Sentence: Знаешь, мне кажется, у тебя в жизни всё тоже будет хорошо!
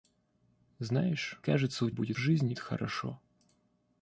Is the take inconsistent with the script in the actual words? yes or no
yes